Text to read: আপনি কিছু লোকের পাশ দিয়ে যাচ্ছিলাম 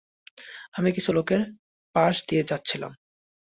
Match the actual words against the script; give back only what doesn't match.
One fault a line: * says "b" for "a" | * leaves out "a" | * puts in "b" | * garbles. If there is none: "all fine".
* says "আমি" for "আপনি"